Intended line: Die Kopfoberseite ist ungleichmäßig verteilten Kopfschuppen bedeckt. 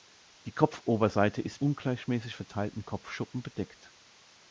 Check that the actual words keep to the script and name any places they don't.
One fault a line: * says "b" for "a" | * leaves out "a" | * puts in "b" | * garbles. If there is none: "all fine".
all fine